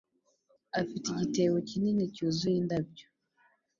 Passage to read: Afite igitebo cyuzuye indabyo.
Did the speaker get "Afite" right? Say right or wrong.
right